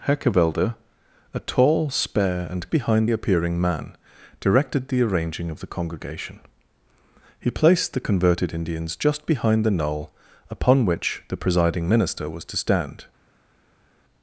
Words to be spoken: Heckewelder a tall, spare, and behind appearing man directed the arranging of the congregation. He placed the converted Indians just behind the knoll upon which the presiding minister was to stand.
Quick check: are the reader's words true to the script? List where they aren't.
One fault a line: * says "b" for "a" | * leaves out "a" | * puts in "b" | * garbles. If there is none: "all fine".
all fine